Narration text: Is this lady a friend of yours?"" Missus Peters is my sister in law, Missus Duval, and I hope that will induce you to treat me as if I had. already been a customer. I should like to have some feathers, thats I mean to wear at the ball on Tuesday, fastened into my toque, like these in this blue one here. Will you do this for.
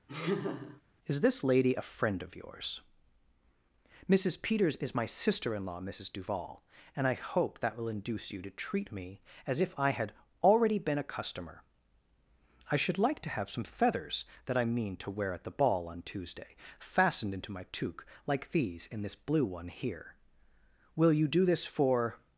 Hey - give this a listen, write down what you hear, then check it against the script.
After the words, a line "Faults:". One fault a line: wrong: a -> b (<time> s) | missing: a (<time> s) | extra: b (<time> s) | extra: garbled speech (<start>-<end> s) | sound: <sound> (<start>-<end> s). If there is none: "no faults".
Is this lady a friend of yours?"" Missus Peters is my sister in law, Missus Duval, and I hope that will induce you to treat me as if I had. already been a customer. I should like to have some feathers, that I mean to wear at the ball on Tuesday, fastened into my toque, like these in this blue one here. Will you do this for.
Faults:
sound: laugh (0.1-0.8 s)
wrong: thats -> that (14.4 s)